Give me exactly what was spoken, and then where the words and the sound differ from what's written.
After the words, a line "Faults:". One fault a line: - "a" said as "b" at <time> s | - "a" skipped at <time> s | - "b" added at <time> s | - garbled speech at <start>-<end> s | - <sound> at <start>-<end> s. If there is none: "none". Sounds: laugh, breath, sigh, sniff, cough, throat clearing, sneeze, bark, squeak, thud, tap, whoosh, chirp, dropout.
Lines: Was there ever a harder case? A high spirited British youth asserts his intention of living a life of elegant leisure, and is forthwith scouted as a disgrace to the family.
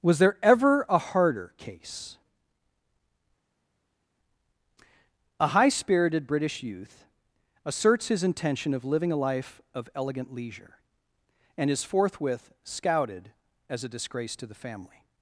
Was there ever a harder case? A high spirited British youth asserts his intention of living a life of elegant leisure, and is forthwith scouted as a disgrace to the family.
Faults:
none